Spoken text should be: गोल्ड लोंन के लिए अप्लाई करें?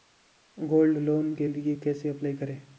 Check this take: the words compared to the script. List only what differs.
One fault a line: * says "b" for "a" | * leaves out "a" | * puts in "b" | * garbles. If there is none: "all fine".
* puts in "कैसे"